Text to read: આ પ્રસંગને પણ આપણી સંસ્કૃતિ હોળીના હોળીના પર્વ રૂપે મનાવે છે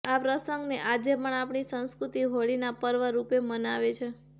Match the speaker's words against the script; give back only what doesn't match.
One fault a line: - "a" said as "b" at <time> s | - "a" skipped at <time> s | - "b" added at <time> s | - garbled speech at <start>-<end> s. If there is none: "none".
- "આજે" added at 0.8 s
- "હોળીના" skipped at 2.8 s